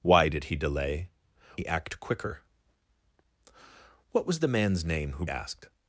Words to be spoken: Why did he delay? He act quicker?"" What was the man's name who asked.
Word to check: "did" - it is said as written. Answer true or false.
true